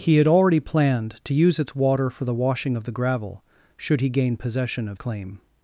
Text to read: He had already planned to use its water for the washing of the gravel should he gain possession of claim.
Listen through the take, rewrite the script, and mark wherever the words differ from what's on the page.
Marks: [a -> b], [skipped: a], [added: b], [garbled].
He had already planned to use its water for the washing of the gravel should he gain possession of claim.